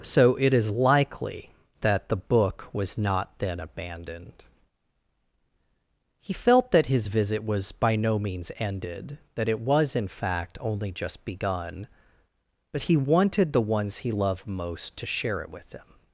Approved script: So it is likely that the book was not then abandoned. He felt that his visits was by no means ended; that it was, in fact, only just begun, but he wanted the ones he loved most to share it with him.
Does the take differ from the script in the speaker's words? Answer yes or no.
yes